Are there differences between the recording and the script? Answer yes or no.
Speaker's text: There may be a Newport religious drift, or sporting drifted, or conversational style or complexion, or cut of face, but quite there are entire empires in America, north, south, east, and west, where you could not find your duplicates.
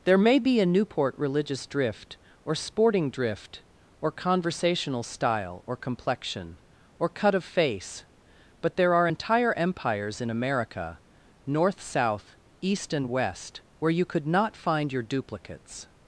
yes